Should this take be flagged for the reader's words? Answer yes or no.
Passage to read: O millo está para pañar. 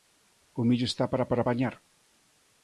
yes